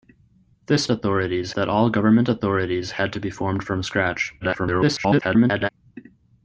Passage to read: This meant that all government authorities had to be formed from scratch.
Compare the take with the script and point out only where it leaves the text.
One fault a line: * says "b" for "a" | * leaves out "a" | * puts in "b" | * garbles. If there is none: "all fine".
* says "authorities" for "meant"
* garbles